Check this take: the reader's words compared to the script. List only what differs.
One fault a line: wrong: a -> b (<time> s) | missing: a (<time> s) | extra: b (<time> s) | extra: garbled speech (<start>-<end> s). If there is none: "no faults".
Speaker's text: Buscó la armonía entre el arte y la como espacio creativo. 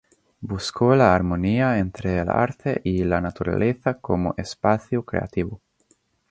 extra: naturaleza (3.2 s)